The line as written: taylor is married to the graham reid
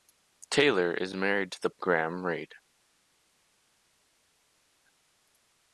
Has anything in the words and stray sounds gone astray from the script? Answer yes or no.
no